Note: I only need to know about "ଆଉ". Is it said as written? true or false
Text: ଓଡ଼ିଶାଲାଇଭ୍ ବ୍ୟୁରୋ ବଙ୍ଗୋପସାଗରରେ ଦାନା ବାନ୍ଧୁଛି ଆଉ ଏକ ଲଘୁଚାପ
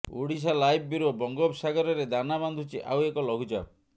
true